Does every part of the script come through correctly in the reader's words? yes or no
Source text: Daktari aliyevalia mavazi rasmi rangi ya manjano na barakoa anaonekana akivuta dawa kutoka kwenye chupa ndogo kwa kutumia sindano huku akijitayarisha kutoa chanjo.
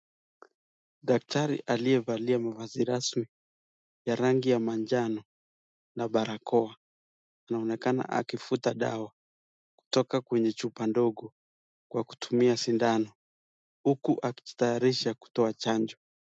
no